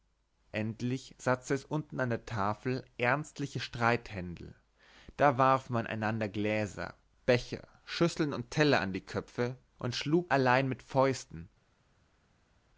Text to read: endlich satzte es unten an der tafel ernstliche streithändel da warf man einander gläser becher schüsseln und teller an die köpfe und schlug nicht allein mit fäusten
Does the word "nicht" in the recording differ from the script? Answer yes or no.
yes